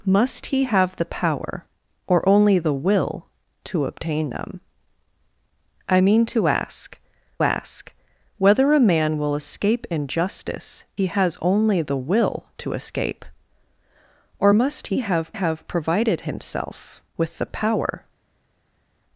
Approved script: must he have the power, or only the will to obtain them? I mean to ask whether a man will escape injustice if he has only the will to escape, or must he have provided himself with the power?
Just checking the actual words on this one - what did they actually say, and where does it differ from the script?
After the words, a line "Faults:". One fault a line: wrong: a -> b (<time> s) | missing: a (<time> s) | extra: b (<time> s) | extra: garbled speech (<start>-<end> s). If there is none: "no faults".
must he have the power, or only the will to obtain them? I mean to ask ask whether a man will escape injustice he has only the will to escape, or must he have have provided himself with the power?
Faults:
extra: ask (7.4 s)
missing: if (10.8 s)
extra: have (15.3 s)